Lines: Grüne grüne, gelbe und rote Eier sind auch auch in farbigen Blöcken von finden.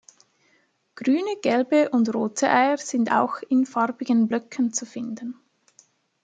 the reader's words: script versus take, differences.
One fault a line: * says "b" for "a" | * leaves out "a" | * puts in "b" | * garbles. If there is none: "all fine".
* leaves out "grüne"
* leaves out "auch"
* says "zu" for "von"